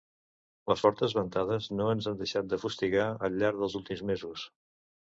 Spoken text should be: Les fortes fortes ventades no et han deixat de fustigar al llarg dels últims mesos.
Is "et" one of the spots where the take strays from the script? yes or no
yes